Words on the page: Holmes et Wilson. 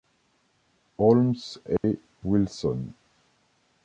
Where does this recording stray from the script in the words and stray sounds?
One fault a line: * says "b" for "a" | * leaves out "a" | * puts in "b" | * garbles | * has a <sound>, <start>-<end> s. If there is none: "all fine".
* has a dropout, 1.8-1.8 s